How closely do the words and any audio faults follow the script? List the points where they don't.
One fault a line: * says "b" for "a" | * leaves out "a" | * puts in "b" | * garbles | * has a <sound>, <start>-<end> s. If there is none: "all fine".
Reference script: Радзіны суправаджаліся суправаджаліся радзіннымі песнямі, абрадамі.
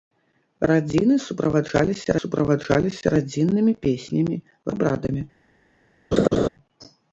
* has a laugh, 6.1-6.5 s